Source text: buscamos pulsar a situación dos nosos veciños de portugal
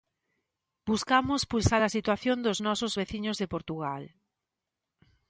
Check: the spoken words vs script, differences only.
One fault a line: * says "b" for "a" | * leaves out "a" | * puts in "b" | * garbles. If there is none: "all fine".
all fine